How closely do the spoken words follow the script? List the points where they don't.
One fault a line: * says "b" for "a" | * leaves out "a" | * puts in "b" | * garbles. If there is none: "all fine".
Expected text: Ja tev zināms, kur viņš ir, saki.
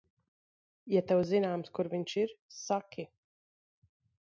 all fine